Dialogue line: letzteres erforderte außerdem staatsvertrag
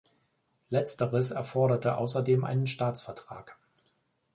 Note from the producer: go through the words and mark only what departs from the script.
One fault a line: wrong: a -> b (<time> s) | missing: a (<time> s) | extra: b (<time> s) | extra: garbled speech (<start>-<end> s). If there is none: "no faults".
extra: einen (2.4 s)